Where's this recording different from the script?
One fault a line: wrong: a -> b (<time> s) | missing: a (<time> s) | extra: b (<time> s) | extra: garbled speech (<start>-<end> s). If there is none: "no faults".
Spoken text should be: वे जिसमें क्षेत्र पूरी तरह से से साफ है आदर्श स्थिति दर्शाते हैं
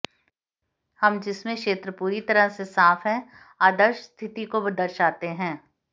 wrong: वे -> हम (1.0 s)
missing: से (2.6 s)
extra: को (4.5 s)